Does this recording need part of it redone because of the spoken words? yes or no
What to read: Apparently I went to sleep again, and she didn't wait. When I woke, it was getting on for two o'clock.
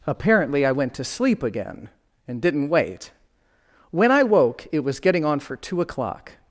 yes